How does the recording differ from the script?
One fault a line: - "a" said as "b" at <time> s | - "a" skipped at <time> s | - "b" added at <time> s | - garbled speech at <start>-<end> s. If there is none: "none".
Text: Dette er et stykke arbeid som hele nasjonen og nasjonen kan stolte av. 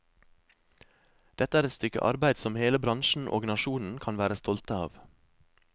- "nasjonen" said as "bransjen" at 2.9 s
- "være" added at 4.2 s